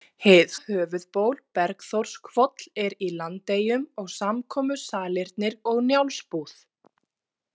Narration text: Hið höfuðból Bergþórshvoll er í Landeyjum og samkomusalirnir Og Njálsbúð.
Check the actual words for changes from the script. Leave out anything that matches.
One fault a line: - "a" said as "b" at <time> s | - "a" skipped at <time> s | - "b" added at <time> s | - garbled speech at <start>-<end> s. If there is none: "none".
none